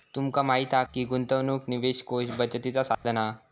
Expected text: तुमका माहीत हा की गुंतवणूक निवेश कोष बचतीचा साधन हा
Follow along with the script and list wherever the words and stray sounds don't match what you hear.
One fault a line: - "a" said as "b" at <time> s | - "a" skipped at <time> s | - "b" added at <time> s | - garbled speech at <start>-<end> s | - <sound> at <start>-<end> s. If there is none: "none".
- dropout at 2.9-3.0 s